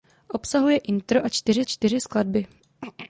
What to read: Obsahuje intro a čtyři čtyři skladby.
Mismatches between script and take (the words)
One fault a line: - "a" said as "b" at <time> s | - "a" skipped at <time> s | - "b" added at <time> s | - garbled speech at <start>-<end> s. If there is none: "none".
none